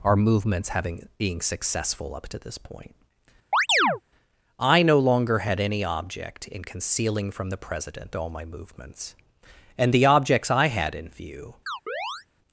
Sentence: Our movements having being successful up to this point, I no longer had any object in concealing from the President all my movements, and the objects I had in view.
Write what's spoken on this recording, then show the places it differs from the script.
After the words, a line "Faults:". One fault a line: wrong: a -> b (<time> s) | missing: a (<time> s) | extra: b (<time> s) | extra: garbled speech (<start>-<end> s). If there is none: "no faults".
Our movements having being successful up to this point, I no longer had any object in concealing from the President all my movements, and the objects I had in view.
Faults:
no faults